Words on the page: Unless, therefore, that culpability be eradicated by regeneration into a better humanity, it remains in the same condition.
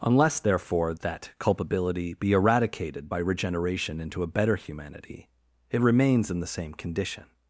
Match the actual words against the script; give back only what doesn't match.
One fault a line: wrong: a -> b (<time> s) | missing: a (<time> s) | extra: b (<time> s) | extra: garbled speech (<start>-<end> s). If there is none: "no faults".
no faults